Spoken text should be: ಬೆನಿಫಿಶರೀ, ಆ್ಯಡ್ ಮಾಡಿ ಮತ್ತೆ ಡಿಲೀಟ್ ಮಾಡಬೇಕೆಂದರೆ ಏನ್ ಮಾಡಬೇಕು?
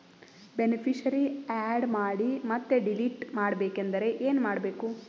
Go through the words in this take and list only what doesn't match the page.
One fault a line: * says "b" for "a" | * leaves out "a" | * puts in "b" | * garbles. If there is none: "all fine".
all fine